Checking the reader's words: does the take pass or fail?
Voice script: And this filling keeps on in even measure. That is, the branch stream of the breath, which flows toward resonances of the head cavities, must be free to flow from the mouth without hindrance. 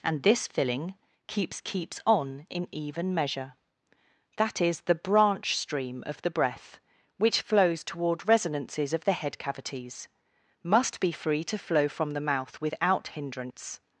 fail